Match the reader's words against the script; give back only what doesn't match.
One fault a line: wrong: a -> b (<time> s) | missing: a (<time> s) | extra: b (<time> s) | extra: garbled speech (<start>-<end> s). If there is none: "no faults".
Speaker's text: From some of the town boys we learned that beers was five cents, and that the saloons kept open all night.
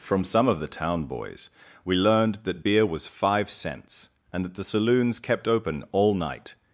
wrong: beers -> beer (2.6 s)